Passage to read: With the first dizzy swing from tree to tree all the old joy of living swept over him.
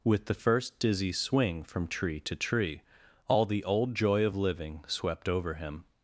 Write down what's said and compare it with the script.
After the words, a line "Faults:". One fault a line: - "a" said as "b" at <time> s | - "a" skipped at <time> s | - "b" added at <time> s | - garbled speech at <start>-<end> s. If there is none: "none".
With the first dizzy swing from tree to tree all the old joy of living swept over him.
Faults:
none